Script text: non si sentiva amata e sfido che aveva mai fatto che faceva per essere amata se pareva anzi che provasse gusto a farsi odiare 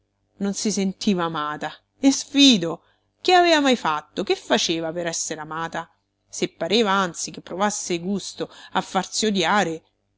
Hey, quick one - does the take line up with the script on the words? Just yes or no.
yes